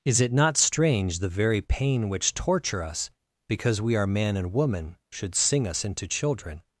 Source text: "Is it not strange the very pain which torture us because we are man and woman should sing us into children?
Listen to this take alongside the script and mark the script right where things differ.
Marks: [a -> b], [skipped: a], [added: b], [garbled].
"Is it not strange the very pain which torture us because we are man and woman should sing us into children?